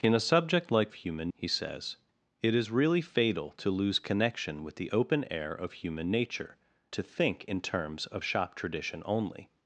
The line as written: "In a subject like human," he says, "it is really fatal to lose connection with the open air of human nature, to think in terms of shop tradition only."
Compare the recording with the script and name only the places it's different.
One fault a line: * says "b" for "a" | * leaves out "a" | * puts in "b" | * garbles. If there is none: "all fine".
all fine